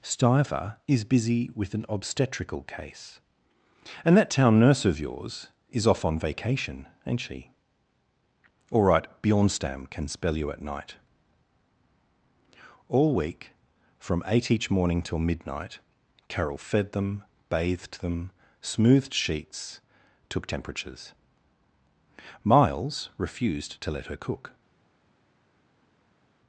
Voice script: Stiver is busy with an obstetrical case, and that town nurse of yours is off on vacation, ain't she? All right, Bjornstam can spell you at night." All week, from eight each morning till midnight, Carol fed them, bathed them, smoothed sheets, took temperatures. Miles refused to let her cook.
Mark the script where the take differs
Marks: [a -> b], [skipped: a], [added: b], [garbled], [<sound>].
Stiver is busy with an obstetrical case, and that town nurse of yours is off on vacation, ain't she? All right, Bjornstam can spell you at night." All week, from eight each morning till midnight, Carol fed them, bathed them, smoothed sheets, took temperatures. Miles refused to let her cook.